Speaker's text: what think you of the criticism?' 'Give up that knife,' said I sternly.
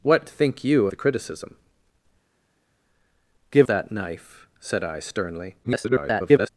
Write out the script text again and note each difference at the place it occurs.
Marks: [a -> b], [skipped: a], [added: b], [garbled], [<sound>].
what think you [skipped: of] the criticism?' 'Give [skipped: up] that knife,' said I sternly. [garbled]